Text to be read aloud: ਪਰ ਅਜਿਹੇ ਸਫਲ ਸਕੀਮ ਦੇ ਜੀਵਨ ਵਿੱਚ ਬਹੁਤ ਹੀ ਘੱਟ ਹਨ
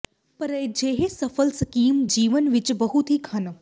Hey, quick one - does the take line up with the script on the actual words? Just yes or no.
no